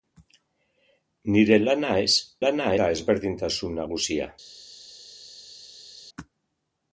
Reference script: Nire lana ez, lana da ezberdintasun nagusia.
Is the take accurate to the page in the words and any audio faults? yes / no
yes